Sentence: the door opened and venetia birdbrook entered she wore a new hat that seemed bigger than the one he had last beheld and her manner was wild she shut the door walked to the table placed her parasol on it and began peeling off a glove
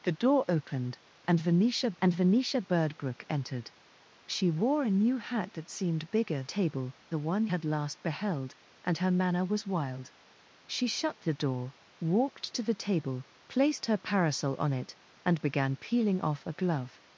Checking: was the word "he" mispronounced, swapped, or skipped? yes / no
yes